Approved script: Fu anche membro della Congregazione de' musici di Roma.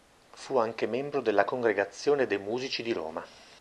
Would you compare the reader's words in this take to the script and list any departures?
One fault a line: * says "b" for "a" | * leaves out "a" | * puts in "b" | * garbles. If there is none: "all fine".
all fine